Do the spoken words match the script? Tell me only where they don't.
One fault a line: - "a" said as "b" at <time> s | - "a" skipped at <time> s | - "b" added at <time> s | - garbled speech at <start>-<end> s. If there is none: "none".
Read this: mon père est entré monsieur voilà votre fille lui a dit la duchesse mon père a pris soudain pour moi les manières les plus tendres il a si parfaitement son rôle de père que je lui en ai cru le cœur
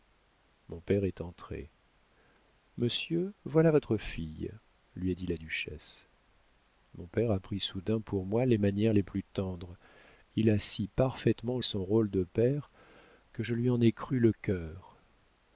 none